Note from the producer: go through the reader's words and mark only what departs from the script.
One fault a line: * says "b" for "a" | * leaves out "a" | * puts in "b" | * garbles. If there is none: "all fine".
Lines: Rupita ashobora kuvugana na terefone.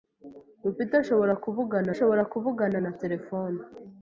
* puts in "ashobora kuvugana"